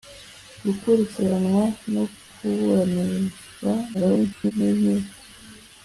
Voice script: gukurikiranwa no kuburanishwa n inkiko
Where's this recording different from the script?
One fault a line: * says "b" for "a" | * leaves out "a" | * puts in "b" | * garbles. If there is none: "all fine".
* garbles